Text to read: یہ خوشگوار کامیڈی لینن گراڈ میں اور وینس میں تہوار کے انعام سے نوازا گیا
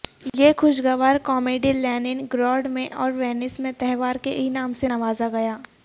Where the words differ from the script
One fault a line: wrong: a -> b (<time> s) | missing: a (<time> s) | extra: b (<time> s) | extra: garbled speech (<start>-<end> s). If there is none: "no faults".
no faults